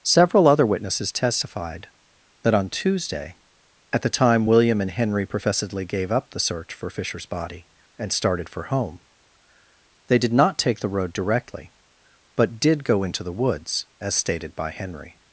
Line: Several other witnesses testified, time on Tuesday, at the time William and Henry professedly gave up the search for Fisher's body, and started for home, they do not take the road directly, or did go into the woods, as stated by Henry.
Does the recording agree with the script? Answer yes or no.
no